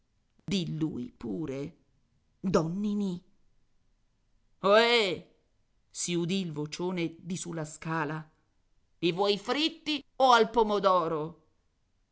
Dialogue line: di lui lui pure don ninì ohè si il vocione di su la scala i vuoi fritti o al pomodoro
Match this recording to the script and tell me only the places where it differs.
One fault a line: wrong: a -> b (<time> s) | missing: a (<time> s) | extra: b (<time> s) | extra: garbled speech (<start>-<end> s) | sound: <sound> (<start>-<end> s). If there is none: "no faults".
sound: dropout (0.4-0.5 s)
missing: lui (1.1 s)
extra: udì (6.1 s)